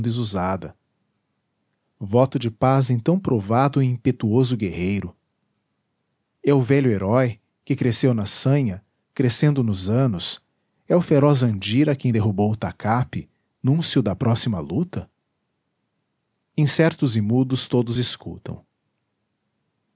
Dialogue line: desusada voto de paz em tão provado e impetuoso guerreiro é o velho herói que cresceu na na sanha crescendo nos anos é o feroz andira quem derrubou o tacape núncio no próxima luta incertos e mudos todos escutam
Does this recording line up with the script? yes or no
no